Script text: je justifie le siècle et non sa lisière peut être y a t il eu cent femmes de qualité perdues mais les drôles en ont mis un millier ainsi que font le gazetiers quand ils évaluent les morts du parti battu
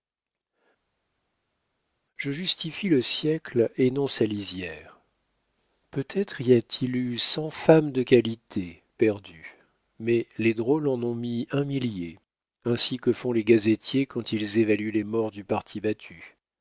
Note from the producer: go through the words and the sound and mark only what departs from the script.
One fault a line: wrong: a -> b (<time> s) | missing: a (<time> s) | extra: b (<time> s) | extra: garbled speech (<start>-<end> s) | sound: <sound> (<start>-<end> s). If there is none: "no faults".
wrong: le -> les (13.3 s)